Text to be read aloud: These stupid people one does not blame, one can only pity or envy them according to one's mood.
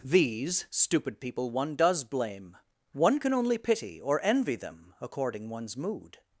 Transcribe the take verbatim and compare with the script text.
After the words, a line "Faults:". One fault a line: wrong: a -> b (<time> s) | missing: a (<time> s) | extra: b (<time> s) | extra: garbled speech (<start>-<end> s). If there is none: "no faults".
These stupid people one does blame, one can only pity or envy them according one's mood.
Faults:
missing: not (2.0 s)
missing: to (5.5 s)